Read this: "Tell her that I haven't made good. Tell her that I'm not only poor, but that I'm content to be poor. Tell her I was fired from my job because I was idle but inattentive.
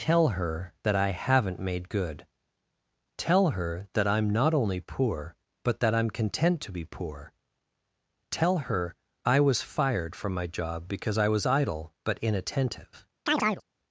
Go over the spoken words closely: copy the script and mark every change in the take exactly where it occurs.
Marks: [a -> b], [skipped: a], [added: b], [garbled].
"Tell her that I haven't made good. Tell her that I'm not only poor, but that I'm content to be poor. Tell her I was fired from my job because I was idle but inattentive.